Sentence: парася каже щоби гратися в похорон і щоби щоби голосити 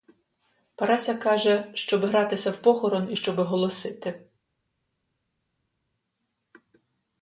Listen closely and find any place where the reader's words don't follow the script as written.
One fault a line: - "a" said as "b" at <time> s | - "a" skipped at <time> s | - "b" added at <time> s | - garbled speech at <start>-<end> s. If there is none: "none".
- "щоби" skipped at 3.4 s